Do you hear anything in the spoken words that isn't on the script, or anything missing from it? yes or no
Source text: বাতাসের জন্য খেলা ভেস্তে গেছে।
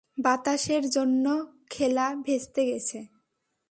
no